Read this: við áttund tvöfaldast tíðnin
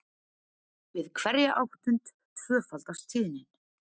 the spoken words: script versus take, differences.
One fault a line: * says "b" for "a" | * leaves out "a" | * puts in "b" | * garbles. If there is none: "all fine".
* puts in "hverja"